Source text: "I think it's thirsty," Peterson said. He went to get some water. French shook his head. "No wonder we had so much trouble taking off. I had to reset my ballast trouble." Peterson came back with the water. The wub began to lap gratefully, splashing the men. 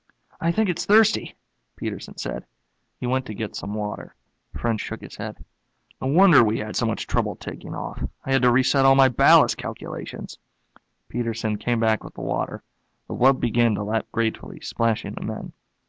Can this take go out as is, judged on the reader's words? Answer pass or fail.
fail